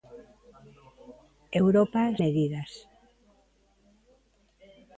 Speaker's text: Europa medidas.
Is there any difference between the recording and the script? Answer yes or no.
no